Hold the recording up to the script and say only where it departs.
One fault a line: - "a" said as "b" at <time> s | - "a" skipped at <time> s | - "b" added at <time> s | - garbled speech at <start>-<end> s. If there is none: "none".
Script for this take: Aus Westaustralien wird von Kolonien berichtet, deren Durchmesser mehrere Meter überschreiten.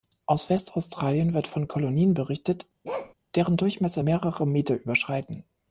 none